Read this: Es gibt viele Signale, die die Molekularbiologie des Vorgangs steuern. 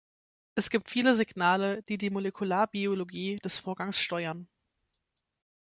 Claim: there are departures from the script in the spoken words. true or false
false